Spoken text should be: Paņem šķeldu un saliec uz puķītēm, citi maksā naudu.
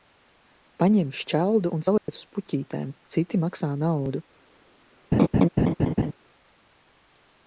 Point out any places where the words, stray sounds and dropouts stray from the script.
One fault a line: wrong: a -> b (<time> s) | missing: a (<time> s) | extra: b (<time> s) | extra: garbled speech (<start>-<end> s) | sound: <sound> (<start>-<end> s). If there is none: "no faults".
sound: dropout (2.0-2.1 s)
sound: laugh (5.1-6.1 s)